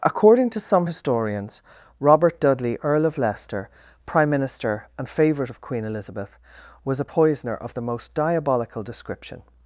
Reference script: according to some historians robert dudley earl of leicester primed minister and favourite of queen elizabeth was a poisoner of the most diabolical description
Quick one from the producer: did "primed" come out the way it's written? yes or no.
no